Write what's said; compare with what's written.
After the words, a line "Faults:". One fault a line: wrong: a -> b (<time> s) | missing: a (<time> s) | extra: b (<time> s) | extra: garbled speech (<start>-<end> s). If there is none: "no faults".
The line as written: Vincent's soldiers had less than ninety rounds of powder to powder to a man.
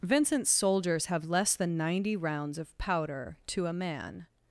Vincent's soldiers have less than ninety rounds of powder to a man.
Faults:
wrong: had -> have (1.1 s)
missing: powder to (3.7 s)